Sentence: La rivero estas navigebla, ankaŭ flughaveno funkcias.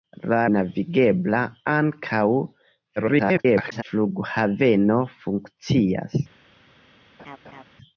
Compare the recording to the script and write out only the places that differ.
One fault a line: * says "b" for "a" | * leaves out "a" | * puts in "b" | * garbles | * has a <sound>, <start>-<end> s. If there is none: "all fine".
* leaves out "rivero estas"
* garbles
* has a laugh, 7.2-7.6 s